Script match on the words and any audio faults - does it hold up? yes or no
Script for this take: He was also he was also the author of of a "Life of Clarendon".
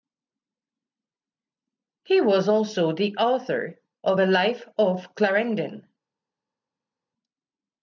no